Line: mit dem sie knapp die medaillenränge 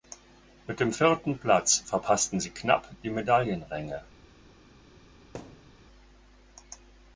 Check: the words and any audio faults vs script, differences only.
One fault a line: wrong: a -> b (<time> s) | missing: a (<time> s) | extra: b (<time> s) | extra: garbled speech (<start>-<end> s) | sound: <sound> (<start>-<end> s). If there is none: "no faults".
extra: vierten platz verpassten (0.9 s)
sound: thud (5.3-5.8 s)